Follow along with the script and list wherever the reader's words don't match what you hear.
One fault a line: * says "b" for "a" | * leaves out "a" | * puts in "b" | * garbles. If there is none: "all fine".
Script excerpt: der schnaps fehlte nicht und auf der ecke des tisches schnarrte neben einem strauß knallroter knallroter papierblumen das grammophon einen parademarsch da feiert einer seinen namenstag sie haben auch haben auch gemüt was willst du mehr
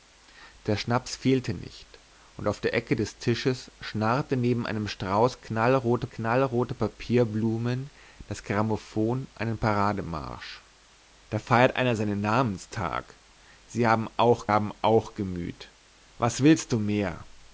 all fine